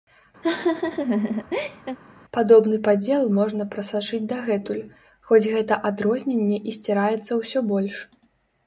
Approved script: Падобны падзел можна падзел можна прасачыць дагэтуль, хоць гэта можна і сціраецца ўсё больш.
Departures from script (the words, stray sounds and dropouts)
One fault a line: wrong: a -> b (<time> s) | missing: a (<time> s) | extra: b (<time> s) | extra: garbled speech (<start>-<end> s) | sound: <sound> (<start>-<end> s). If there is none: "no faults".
sound: laugh (0.4-2.0 s)
missing: падзел можна (3.7 s)
wrong: можна -> адрозненне (5.9 s)